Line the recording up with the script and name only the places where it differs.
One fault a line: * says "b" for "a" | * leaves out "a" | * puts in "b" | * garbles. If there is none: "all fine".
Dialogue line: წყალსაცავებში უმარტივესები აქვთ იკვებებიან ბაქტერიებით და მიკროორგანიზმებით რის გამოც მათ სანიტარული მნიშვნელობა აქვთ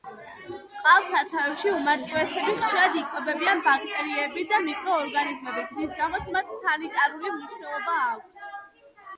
* says "ხშირად" for "აქვთ"